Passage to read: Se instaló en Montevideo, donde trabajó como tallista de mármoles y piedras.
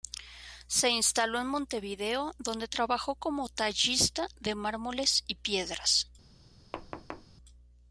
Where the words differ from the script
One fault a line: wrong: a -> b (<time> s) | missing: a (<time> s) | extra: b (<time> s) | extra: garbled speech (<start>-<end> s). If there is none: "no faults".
no faults